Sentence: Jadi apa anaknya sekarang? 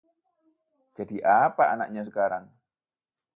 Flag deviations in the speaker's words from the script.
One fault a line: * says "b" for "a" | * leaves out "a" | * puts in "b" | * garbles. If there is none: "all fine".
all fine